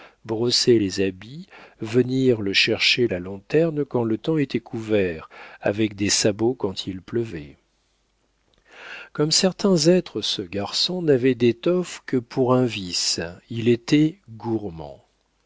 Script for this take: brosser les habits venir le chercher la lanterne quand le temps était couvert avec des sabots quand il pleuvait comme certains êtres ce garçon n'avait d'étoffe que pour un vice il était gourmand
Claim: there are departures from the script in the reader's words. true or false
false